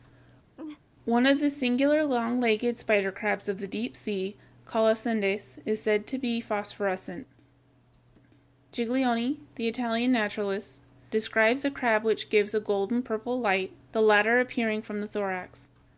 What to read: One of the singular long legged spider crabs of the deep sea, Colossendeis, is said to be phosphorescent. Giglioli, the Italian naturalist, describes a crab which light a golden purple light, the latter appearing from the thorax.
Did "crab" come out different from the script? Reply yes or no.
no